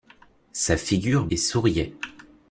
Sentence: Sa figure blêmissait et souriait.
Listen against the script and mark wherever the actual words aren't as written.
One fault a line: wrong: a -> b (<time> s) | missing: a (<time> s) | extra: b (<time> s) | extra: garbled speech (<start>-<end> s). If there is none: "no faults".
missing: blêmissait (1.3 s)